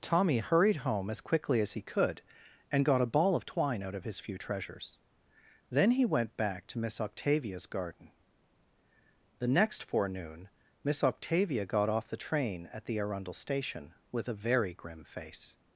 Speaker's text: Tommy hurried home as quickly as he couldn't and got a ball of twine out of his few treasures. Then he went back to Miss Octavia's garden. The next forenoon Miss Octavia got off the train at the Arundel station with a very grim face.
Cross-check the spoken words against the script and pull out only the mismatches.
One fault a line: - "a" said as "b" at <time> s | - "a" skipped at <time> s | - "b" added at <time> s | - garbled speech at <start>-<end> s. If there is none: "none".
- "couldn't" said as "could" at 1.8 s